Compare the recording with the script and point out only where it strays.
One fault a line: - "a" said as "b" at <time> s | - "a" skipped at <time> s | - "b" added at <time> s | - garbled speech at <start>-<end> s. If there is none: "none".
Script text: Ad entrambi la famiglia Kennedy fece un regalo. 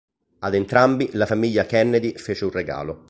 none